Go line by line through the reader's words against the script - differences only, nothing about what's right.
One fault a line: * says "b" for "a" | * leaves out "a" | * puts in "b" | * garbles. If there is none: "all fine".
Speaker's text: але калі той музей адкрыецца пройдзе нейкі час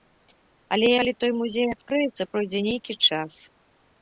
all fine